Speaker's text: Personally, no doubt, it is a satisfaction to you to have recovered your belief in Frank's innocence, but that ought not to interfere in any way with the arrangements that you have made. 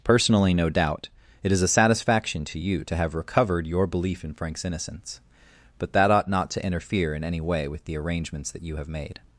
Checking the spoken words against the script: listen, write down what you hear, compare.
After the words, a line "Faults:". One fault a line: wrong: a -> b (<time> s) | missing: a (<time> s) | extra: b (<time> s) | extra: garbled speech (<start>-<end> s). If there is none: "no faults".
Personally, no doubt, it is a satisfaction to you to have recovered your belief in Frank's innocence, but that ought not to interfere in any way with the arrangements that you have made.
Faults:
no faults